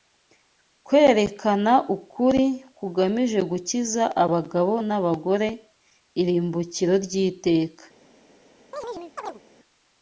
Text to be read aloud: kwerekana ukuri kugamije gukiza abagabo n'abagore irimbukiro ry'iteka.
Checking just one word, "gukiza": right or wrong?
right